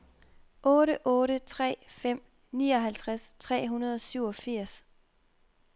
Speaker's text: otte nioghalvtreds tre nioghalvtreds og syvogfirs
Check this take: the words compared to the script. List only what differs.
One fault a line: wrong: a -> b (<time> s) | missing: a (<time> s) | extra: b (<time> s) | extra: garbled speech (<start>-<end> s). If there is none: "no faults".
extra: otte tre fem (1.1 s)
wrong: nioghalvtreds -> hundrede (3.7 s)